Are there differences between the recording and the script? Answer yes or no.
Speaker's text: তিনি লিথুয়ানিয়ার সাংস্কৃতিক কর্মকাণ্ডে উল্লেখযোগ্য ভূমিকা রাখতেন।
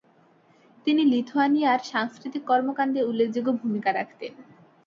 no